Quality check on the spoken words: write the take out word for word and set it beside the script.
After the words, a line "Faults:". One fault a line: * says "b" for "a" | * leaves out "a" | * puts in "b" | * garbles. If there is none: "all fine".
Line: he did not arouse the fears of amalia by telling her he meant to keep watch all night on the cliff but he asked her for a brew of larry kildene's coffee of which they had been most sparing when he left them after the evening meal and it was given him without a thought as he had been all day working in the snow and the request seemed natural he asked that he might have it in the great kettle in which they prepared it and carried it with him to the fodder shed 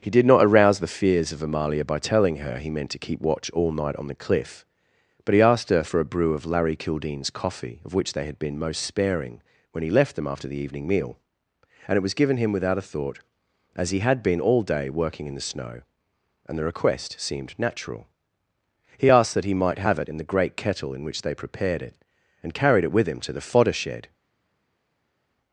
he did not arouse the fears of amalia by telling her he meant to keep watch all night on the cliff but he asked her for a brew of larry kildene's coffee of which they had been most sparing when he left them after the evening meal and it was given him without a thought as he had been all day working in the snow and the request seemed natural he asked that he might have it in the great kettle in which they prepared it and carried it with him to the fodder shed
Faults:
all fine